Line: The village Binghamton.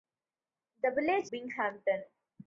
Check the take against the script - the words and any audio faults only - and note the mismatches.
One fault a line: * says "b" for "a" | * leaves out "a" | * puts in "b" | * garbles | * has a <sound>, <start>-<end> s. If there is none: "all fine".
all fine